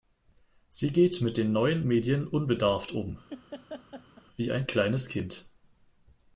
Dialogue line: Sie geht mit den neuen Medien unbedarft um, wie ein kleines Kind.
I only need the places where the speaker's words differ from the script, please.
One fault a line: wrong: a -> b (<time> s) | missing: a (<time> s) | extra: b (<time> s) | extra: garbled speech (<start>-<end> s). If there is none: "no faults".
no faults